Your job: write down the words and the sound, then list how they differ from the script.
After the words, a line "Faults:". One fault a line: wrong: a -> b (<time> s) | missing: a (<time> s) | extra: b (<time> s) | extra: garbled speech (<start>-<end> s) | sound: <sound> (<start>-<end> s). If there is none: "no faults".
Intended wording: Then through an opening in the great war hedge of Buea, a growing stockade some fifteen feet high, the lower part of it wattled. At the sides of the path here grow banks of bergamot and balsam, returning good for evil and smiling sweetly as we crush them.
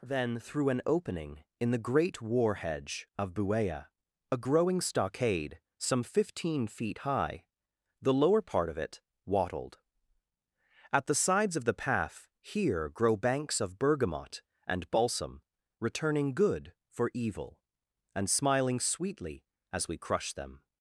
Then through an opening in the great war hedge of Buea, a growing stockade some fifteen feet high, the lower part of it wattled. At the sides of the path here grow banks of bergamot and balsam, returning good for evil and smiling sweetly as we crush them.
Faults:
no faults